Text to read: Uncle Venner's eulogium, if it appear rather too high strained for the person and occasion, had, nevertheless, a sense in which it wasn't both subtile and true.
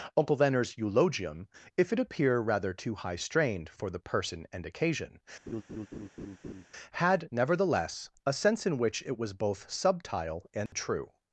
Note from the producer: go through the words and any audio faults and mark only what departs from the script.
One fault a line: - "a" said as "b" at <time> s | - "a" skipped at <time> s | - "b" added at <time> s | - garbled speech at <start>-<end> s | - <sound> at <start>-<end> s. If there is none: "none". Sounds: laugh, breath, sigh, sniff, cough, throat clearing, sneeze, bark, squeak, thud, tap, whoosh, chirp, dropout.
- laugh at 5.5-6.7 s
- "wasn't" said as "was" at 9.2 s
- dropout at 10.7-10.7 s